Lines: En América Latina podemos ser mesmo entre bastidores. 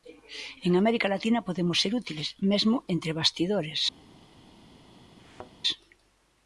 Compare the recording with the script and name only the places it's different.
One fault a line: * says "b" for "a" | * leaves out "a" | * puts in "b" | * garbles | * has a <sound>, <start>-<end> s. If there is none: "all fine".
* puts in "útiles"
* has a thud, 5.2-5.5 s